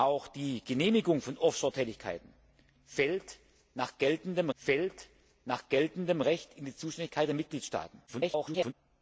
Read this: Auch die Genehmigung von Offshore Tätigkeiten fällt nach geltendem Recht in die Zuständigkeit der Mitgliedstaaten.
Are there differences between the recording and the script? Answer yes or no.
yes